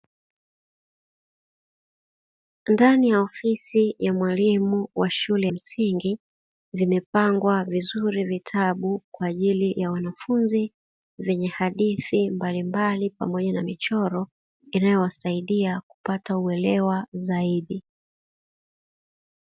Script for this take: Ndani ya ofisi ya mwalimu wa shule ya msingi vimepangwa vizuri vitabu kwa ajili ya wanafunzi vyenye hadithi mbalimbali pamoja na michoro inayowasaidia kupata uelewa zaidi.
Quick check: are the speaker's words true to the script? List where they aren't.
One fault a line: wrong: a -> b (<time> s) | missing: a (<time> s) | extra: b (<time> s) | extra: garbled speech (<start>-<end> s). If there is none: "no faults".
missing: ya (5.5 s)